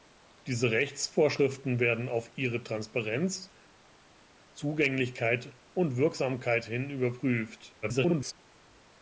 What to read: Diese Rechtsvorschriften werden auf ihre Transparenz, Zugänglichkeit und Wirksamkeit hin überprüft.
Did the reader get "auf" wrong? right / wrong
right